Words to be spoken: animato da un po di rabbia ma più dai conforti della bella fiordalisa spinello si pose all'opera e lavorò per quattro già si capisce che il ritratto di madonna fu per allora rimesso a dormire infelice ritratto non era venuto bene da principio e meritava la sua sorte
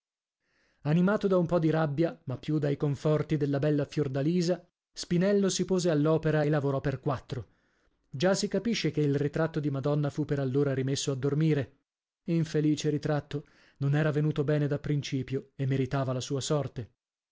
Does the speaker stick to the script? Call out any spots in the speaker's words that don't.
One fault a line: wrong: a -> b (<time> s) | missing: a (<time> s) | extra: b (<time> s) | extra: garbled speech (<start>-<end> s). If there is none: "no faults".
no faults